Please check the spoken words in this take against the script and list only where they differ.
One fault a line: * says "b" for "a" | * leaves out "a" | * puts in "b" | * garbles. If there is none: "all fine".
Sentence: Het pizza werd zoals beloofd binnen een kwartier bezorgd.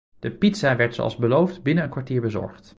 * says "De" for "Het"